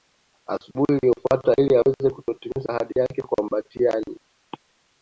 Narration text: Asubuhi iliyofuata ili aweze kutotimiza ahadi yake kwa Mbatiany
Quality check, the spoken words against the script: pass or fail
pass